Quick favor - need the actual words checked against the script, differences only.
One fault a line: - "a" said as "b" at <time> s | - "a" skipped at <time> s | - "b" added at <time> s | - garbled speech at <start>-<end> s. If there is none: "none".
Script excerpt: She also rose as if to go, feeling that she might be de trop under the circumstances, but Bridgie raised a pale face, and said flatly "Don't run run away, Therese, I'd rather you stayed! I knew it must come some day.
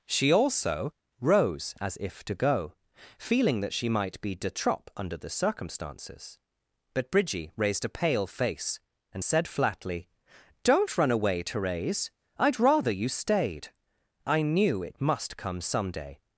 - "run" skipped at 11.1 s